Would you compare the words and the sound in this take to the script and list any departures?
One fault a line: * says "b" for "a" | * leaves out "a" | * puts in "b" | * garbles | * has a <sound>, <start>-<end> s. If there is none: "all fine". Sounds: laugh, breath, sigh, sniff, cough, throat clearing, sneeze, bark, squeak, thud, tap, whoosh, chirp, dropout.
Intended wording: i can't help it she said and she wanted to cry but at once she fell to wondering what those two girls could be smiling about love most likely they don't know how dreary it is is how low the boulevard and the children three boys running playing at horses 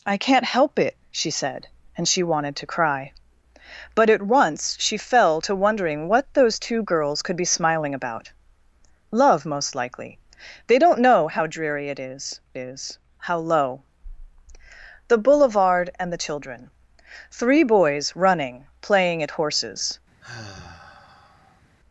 * has a sigh, 20.2-21.6 s